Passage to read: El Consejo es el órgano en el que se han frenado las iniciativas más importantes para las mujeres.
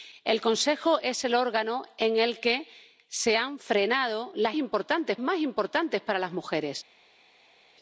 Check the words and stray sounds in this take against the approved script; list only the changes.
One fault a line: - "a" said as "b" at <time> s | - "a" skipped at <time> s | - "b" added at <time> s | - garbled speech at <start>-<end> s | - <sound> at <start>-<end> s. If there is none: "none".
- "iniciativas" said as "importantes" at 4.5 s